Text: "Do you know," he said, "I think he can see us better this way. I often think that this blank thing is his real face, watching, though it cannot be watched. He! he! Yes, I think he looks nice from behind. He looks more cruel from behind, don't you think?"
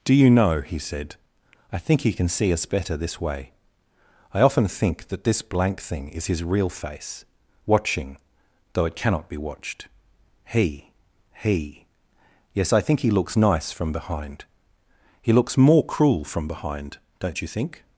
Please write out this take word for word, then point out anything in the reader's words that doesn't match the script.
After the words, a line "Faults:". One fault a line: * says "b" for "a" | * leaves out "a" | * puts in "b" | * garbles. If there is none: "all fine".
"Do you know," he said, "I think he can see us better this way. I often think that this blank thing is his real face, watching, though it cannot be watched. He! he! Yes, I think he looks nice from behind. He looks more cruel from behind, don't you think?"
Faults:
all fine